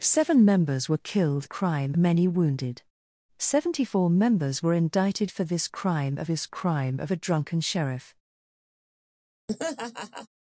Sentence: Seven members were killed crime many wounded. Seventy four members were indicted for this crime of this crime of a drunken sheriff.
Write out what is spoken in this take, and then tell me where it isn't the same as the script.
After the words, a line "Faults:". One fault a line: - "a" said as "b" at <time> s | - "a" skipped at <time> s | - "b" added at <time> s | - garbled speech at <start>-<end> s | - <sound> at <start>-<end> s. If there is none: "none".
Seven members were killed crime many wounded. Seventy four members were indicted for this crime of this crime of a drunken sheriff.
Faults:
- laugh at 9.5-10.3 s